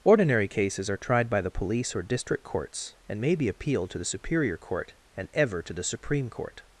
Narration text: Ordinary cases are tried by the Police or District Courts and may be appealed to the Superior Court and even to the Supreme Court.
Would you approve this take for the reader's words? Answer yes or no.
no